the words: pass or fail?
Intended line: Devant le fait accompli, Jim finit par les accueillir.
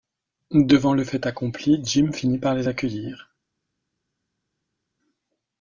pass